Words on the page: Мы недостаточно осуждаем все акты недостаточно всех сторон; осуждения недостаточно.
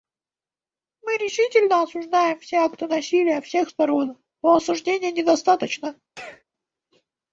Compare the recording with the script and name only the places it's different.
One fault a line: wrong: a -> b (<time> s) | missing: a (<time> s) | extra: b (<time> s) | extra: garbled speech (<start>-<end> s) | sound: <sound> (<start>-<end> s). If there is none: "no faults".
wrong: недостаточно -> решительно (1.2 s)
wrong: недостаточно -> насилия (2.9 s)
extra: но (4.4 s)
sound: sneeze (6.2-6.4 s)